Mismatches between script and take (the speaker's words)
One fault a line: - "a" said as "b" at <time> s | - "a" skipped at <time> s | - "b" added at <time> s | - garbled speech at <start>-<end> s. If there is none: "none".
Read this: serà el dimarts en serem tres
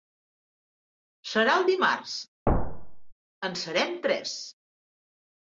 none